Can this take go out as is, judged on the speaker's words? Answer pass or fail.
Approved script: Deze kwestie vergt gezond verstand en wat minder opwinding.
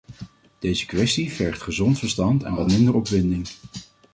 pass